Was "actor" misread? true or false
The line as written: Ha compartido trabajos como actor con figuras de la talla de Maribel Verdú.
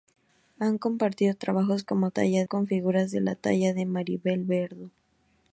true